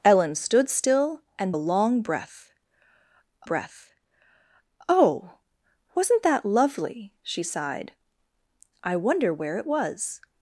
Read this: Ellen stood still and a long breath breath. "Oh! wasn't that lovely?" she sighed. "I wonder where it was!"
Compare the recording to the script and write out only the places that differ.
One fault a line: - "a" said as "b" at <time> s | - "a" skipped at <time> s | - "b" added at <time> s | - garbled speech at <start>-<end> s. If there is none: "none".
none